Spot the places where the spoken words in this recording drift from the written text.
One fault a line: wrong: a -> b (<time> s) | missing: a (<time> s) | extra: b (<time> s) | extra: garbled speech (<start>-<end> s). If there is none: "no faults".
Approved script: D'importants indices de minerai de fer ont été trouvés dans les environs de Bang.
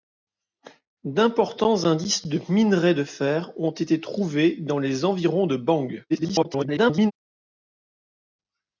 extra: garbled speech (6.1-7.1 s)